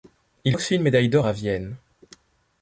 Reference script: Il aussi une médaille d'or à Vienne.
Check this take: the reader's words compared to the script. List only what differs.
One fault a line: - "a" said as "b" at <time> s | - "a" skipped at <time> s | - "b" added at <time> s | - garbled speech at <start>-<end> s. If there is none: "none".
none